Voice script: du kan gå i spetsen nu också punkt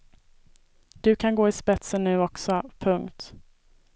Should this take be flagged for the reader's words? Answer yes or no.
no